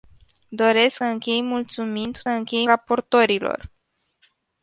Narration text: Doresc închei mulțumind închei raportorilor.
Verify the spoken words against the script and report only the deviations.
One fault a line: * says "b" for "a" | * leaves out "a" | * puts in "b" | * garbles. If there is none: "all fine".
all fine